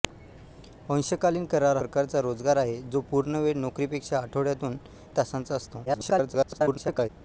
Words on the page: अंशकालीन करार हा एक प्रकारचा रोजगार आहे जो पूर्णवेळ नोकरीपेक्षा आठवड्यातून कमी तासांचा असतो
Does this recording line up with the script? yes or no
no